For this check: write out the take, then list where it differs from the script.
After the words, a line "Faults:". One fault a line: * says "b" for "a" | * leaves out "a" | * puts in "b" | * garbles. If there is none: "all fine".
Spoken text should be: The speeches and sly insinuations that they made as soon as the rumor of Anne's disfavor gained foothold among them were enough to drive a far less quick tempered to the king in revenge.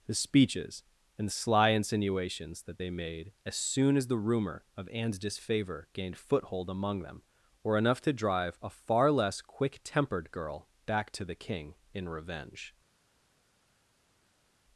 The speeches and sly insinuations that they made as soon as the rumor of Anne's disfavor gained foothold among them were enough to drive a far less quick tempered girl back to the king in revenge.
Faults:
* puts in "girl back"